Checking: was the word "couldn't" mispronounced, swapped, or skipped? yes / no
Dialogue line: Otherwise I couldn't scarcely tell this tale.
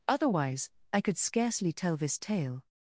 yes